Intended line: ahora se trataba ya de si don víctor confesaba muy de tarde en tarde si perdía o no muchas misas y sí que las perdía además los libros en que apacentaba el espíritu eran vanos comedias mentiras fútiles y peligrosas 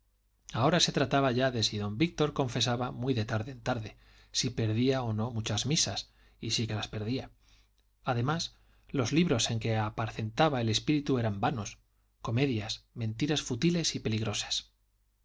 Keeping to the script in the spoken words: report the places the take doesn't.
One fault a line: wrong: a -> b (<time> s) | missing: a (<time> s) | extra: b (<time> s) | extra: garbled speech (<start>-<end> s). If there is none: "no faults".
no faults